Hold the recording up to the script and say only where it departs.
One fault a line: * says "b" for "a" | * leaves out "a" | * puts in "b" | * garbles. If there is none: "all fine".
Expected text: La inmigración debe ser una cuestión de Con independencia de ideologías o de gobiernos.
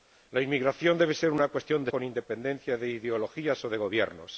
all fine